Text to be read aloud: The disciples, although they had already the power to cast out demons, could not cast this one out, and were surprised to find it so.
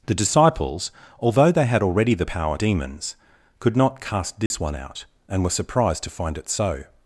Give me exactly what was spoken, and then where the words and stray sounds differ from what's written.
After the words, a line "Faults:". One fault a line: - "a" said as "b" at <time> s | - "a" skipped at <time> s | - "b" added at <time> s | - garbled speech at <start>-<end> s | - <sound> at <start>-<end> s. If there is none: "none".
The disciples, although they had already the power demons, could not cast this one out, and were surprised to find it so.
Faults:
- "to cast out" skipped at 2.6 s
- dropout at 4.5-4.5 s